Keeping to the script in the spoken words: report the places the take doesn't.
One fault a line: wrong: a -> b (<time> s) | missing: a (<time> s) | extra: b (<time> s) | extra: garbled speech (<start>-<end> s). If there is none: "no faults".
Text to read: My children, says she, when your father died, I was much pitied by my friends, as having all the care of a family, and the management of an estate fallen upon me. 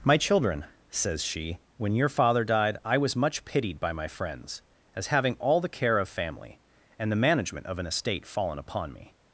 missing: a (6.1 s)